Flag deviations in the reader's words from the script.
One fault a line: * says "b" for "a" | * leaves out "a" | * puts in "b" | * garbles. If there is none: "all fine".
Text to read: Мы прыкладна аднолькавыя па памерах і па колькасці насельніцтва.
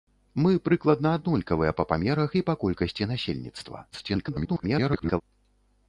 * garbles